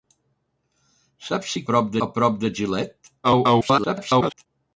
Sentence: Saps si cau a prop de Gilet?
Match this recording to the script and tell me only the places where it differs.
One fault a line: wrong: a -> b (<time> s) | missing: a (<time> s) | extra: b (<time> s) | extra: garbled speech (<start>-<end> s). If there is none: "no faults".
wrong: cau -> prop (1.7 s)
extra: garbled speech (3.2-4.5 s)